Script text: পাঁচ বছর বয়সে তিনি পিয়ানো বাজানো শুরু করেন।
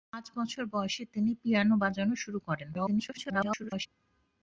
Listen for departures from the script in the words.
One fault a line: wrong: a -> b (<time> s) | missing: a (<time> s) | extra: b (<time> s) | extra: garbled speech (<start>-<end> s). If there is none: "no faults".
extra: garbled speech (2.7-3.9 s)